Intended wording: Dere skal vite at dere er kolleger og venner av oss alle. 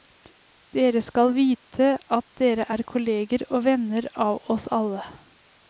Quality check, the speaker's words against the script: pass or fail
pass